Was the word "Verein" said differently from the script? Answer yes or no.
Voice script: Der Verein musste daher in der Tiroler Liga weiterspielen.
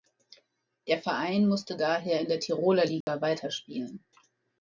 no